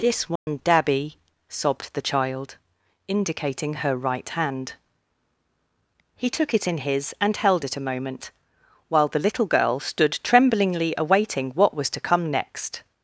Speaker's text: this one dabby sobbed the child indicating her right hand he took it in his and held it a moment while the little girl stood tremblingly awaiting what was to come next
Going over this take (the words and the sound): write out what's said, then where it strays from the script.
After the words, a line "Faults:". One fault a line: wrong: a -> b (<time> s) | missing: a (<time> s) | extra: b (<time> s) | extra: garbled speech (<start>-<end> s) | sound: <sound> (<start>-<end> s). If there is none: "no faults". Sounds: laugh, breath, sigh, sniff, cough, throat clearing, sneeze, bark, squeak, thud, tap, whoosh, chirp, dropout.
this one dabby sobbed the child indicating her right hand he took it in his and held it a moment while the little girl stood tremblingly awaiting what was to come next
Faults:
sound: dropout (0.4-0.5 s)